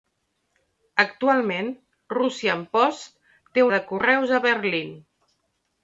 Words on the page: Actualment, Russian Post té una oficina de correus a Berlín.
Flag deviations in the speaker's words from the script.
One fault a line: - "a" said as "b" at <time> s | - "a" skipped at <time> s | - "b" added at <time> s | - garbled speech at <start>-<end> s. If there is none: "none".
- "una oficina" skipped at 3.7 s